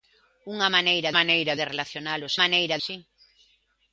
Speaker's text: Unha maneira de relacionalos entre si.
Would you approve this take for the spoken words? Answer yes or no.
no